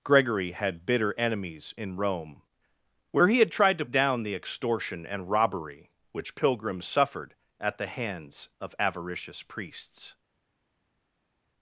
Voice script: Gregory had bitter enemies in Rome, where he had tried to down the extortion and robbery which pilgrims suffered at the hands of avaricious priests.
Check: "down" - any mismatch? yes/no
no